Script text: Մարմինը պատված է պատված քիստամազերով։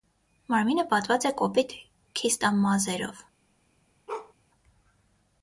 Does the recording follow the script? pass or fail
fail